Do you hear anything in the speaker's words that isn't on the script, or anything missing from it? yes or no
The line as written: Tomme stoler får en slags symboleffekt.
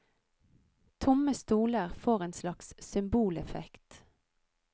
no